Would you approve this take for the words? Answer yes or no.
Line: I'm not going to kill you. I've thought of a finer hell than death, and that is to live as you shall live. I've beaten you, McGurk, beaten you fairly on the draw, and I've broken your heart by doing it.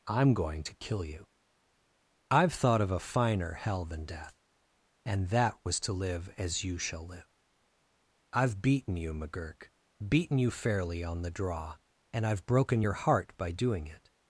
no